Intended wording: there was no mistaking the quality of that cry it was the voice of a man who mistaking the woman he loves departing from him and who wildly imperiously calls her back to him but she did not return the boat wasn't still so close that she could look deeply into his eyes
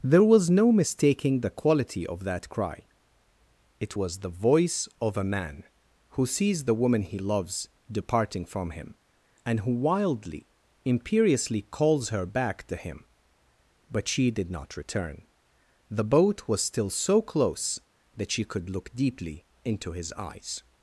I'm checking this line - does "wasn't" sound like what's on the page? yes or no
no